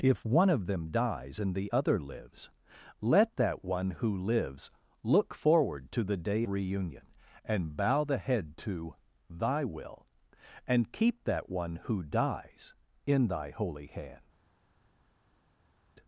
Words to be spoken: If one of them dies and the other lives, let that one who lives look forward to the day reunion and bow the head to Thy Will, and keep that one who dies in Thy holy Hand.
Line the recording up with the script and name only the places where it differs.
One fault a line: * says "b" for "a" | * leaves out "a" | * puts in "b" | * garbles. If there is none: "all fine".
all fine